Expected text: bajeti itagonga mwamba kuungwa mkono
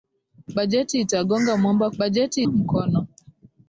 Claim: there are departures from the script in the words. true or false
true